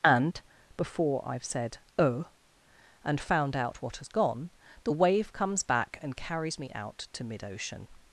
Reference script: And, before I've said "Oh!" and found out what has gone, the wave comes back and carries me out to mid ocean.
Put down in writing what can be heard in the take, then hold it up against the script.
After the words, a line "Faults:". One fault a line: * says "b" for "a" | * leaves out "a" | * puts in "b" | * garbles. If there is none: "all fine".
And, before I've said "Oh!" and found out what has gone, the wave comes back and carries me out to mid ocean.
Faults:
all fine